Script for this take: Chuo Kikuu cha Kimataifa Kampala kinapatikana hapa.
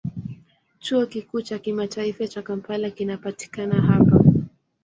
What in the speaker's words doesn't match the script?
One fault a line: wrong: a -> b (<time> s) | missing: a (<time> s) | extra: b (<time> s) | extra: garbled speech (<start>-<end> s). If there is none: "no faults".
extra: cha (2.3 s)